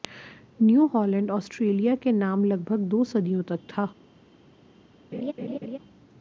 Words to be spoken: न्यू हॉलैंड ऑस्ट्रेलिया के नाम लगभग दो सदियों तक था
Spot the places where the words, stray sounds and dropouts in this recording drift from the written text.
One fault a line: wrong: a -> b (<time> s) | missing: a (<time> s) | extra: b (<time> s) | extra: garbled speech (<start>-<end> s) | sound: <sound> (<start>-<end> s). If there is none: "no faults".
sound: laugh (5.1-5.8 s)